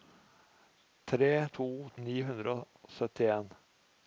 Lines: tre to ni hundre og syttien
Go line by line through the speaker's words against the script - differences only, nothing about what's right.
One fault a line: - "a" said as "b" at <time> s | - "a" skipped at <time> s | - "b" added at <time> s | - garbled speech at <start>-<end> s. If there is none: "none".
none